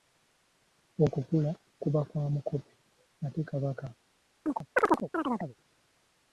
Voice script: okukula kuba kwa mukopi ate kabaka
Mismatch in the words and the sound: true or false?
true